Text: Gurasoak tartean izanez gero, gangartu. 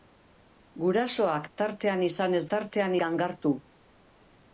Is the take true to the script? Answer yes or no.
no